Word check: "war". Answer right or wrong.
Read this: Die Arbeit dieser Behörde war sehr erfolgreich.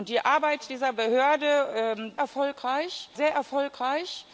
wrong